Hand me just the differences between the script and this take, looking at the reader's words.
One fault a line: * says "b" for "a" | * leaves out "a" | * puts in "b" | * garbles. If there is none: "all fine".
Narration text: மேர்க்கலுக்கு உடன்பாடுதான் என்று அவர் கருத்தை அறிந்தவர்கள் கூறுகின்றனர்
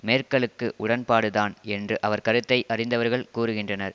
all fine